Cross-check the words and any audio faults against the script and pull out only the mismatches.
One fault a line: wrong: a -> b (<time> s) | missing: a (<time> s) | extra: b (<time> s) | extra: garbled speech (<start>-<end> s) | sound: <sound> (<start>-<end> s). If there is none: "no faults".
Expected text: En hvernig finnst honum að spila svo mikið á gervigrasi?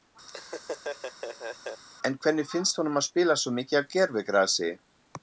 sound: laugh (0.3-1.8 s)